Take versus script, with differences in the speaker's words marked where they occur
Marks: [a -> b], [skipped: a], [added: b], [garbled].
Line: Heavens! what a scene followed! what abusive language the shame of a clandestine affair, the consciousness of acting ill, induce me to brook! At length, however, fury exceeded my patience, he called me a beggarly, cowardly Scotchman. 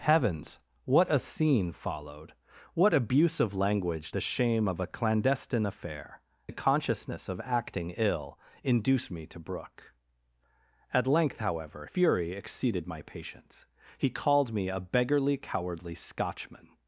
Heavens! what a scene followed! what abusive language the shame of a clandestine affair, the consciousness of acting ill, induce me to brook! At length, however, fury exceeded my patience, he called me a beggarly, cowardly Scotchman.